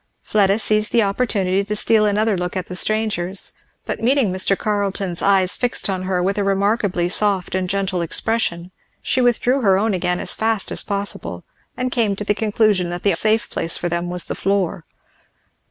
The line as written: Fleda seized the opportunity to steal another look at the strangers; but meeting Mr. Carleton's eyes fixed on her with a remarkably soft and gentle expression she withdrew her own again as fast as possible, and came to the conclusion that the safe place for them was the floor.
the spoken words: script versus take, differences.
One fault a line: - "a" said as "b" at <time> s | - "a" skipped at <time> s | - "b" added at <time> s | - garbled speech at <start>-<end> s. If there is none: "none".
none